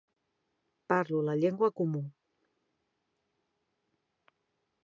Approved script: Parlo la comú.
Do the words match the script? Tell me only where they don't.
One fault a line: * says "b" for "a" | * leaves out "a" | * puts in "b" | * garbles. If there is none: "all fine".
* puts in "llengua"